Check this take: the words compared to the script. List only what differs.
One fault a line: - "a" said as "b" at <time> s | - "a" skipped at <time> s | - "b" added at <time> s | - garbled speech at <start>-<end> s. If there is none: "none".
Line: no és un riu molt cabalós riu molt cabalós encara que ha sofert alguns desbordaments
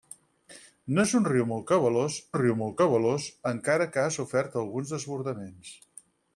none